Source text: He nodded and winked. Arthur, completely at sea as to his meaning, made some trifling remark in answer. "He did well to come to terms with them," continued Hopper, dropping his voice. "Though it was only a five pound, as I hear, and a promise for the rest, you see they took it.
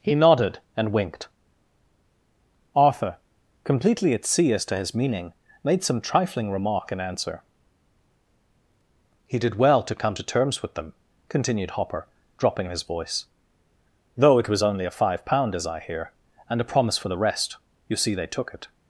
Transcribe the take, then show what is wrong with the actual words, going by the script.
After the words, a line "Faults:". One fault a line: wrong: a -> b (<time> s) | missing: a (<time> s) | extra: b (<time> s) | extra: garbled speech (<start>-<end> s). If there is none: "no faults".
He nodded and winked. Arthur, completely at sea as to his meaning, made some trifling remark in answer. "He did well to come to terms with them," continued Hopper, dropping his voice. "Though it was only a five pound, as I hear, and a promise for the rest, you see they took it.
Faults:
no faults